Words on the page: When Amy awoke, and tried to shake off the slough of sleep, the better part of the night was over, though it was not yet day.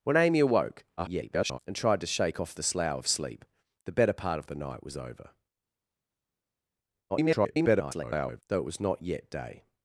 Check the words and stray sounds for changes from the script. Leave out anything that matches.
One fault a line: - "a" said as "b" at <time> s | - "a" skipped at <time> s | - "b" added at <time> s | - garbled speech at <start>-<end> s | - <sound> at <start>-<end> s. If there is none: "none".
- garbled speech at 1.0-1.6 s
- garbled speech at 7.1-8.4 s